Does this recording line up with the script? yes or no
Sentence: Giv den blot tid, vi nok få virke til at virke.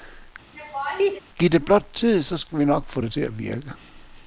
no